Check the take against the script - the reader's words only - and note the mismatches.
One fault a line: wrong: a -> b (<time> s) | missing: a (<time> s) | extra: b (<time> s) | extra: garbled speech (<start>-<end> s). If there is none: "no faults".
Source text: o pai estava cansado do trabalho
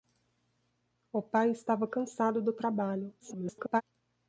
extra: garbled speech (3.2-3.8 s)